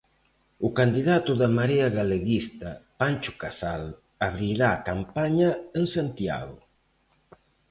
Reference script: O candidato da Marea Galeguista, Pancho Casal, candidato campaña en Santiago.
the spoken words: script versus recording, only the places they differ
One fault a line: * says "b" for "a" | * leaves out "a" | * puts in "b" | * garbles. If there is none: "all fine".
* says "abrirá" for "candidato"